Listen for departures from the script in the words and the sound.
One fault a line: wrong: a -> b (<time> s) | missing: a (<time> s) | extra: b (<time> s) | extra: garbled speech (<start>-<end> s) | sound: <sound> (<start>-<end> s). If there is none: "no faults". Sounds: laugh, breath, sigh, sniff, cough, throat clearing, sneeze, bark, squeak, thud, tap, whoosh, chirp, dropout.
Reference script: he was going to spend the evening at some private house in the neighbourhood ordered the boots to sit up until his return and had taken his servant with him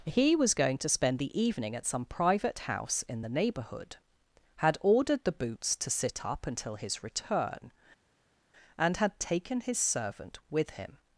extra: had (4.6 s)